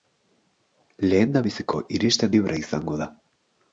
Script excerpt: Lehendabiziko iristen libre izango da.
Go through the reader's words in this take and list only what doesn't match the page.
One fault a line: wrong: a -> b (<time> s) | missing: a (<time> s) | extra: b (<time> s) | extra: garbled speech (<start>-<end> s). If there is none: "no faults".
no faults